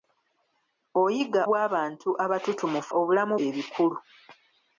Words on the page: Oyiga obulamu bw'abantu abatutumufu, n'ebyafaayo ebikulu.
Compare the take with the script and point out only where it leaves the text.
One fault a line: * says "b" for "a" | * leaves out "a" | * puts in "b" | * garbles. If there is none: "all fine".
* leaves out "obulamu"
* says "obulamu" for "n'ebyafaayo"